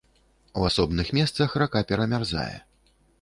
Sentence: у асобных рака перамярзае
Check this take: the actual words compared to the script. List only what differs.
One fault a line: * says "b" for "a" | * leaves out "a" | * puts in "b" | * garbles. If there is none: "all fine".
* puts in "месцах"